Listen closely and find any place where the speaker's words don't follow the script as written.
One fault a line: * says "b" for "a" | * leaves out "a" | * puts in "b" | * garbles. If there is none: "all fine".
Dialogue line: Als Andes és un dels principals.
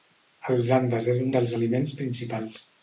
* puts in "aliments"